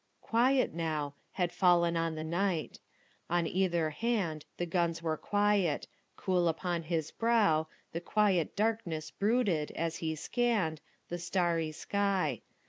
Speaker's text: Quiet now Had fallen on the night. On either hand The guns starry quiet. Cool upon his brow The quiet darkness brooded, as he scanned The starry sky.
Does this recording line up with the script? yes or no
no